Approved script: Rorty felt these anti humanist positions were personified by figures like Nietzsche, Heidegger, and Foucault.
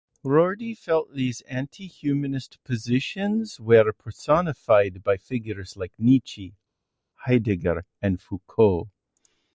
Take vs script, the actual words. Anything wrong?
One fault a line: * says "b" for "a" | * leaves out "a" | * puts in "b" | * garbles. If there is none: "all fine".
all fine